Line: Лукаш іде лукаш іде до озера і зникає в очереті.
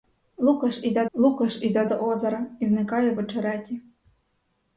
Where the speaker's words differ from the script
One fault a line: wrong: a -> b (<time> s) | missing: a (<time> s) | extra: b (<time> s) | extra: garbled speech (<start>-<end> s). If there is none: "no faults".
no faults